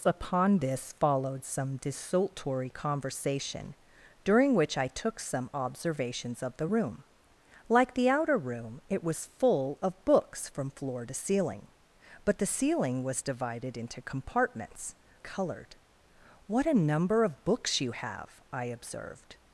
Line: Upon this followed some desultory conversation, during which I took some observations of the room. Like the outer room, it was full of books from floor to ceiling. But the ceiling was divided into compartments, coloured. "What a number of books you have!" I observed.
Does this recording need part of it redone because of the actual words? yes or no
no